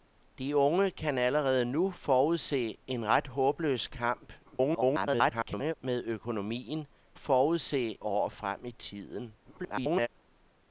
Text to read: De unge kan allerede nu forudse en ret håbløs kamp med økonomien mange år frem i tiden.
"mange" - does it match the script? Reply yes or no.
no